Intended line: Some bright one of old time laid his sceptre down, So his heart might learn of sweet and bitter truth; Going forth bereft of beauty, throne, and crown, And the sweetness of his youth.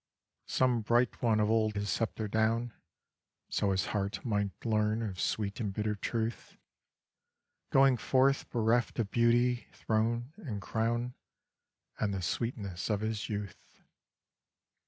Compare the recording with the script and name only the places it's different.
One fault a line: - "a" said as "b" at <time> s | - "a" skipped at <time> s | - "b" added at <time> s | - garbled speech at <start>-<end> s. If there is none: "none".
- "time laid" skipped at 1.8 s